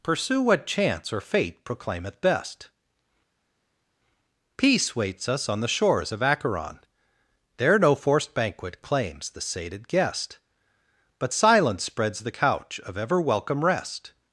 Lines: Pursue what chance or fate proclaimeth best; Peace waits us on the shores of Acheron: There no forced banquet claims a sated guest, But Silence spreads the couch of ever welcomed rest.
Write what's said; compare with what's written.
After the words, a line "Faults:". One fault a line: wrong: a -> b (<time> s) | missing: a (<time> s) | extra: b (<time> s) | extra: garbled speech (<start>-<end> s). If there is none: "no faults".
Pursue what chance or fate proclaimeth best; Peace waits us on the shores of Acheron: There no forced banquet claims the sated guest, But Silence spreads the couch of ever welcome rest.
Faults:
wrong: a -> the (9.3 s)
wrong: welcomed -> welcome (13.2 s)